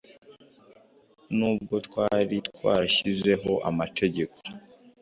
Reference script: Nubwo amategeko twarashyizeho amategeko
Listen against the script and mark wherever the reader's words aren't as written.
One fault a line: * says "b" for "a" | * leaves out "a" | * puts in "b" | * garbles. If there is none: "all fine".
* says "twari" for "amategeko"